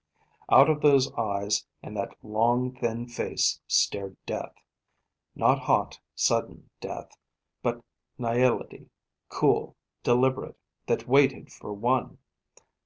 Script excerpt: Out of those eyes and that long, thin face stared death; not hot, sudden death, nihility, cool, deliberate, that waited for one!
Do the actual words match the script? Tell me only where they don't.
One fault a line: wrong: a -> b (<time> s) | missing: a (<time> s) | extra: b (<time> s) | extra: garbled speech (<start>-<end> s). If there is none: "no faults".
extra: but (7.6 s)